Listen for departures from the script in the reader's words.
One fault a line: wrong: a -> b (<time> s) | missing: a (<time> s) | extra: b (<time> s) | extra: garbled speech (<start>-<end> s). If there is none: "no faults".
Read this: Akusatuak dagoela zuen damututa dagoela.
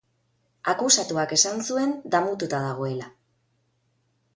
wrong: dagoela -> esan (1.4 s)